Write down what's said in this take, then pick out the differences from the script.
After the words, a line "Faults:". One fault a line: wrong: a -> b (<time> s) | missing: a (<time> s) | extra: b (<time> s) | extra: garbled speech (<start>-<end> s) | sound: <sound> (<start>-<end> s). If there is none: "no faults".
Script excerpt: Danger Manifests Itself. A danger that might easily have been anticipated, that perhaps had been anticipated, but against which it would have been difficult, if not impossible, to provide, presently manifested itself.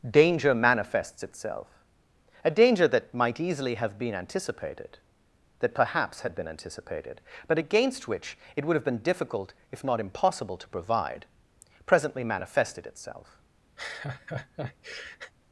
Danger Manifests Itself. A danger that might easily have been anticipated, that perhaps had been anticipated, but against which it would have been difficult, if not impossible, to provide, presently manifested itself.
Faults:
sound: laugh (13.8-15.3 s)